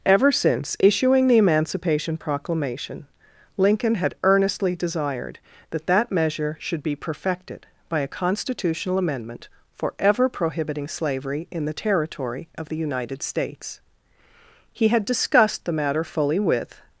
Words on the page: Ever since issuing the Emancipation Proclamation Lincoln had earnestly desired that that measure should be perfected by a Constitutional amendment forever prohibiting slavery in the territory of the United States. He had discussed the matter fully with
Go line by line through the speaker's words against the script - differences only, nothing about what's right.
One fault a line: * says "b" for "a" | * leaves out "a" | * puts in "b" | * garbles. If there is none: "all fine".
all fine